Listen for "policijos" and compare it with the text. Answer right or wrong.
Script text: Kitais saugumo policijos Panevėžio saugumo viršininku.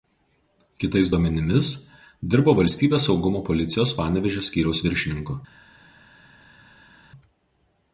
right